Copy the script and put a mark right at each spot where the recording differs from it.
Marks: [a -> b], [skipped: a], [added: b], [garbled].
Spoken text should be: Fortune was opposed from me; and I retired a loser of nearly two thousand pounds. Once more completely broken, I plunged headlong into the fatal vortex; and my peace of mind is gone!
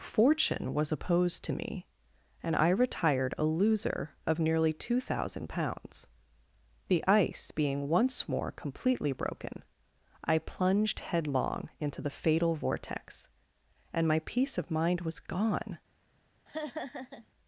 Fortune was opposed [from -> to] me; and I retired a loser of nearly two thousand pounds. [added: The ice being] Once more completely broken, I plunged headlong into the fatal vortex; and my peace of mind [is -> was] gone!